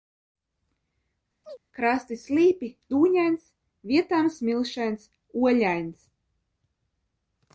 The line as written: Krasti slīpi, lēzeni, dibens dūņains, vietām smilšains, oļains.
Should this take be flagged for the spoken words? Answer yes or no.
yes